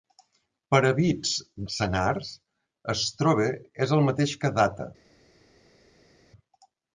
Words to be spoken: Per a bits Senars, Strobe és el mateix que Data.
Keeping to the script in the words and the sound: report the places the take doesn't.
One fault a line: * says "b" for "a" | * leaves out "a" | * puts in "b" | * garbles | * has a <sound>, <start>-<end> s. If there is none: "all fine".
all fine